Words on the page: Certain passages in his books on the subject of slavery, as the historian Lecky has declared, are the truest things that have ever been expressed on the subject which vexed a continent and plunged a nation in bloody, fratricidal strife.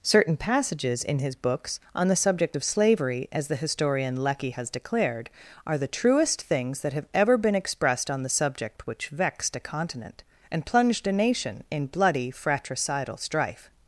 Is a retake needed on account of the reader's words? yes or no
no